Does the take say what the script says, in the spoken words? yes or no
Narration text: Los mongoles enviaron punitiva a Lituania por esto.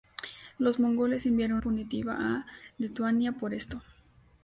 yes